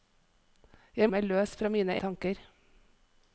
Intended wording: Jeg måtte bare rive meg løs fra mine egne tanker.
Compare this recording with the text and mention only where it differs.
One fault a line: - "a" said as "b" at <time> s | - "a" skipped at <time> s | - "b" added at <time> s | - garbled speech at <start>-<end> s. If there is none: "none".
- "måtte bare rive" skipped at 1.1 s
- "egne" skipped at 2.0 s